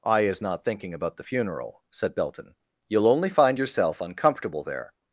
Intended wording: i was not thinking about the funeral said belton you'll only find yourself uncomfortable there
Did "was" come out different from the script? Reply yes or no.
yes